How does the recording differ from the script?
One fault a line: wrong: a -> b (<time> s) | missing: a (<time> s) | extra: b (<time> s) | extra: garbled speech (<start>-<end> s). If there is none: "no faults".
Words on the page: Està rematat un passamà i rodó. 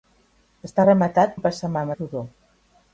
no faults